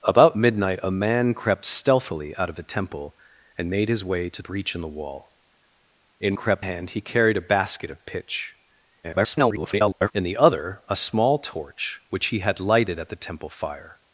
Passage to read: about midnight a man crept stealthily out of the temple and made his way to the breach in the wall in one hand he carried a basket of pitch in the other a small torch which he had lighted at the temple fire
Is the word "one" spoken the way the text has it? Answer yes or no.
no